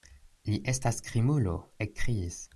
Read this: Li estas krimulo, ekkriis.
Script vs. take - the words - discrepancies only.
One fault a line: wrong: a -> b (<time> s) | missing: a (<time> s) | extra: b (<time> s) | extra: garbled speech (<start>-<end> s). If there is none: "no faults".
no faults